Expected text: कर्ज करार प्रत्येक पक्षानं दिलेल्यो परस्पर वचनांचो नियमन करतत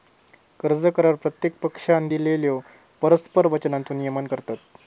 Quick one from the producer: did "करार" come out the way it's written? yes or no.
yes